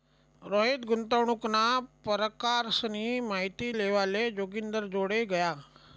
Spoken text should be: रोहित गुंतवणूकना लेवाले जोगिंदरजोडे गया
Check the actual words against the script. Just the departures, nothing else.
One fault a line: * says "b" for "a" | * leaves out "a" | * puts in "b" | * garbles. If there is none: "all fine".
* puts in "परकारसनी माहिती"